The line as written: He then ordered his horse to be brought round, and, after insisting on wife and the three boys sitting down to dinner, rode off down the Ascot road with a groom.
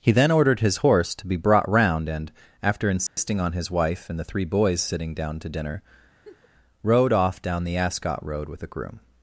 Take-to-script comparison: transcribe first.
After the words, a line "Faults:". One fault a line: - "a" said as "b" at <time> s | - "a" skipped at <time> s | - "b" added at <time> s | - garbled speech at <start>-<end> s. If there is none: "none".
He then ordered his horse to be brought round, and, after insisting on his wife and the three boys sitting down to dinner, rode off down the Ascot road with a groom.
Faults:
- "his" added at 3.5 s